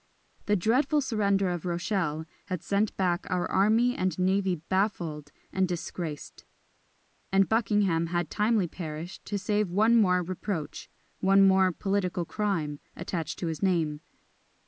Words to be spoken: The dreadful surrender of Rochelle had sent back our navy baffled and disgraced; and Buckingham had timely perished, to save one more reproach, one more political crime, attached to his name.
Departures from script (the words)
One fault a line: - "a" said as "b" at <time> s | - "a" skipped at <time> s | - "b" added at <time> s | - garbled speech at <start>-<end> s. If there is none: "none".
- "army and" added at 3.5 s